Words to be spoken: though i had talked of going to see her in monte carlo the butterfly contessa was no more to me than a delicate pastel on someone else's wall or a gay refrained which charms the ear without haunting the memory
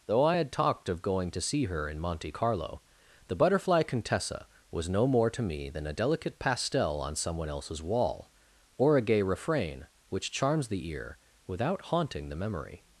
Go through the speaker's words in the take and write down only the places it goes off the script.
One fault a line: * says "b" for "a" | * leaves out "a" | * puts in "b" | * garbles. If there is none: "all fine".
* says "refrain" for "refrained"